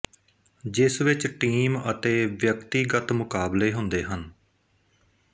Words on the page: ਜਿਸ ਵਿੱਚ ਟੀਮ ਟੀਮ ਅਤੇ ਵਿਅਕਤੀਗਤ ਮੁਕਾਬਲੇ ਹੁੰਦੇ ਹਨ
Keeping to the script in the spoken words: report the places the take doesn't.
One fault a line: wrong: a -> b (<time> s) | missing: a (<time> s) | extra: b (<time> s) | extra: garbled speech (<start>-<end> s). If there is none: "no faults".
missing: ਟੀਮ (1.8 s)